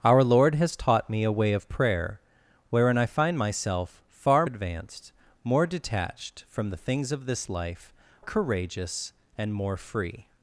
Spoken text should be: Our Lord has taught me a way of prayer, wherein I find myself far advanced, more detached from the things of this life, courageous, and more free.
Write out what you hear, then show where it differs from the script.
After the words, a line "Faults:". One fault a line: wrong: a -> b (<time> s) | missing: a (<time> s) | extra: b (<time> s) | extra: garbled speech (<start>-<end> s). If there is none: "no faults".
Our Lord has taught me a way of prayer, wherein I find myself far advanced, more detached from the things of this life, courageous, and more free.
Faults:
no faults